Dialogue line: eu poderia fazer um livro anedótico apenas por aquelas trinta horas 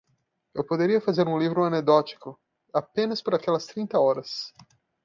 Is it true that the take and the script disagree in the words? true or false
false